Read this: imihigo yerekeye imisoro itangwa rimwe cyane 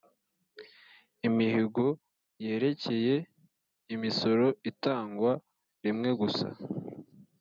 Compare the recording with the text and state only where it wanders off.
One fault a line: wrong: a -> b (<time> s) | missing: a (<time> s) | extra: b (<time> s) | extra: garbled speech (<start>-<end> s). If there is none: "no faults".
wrong: cyane -> gusa (6.2 s)